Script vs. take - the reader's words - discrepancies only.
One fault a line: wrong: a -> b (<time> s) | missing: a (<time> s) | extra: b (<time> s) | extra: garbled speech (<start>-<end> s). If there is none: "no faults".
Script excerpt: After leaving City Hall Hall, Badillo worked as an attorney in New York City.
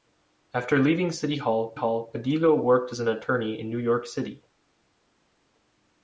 no faults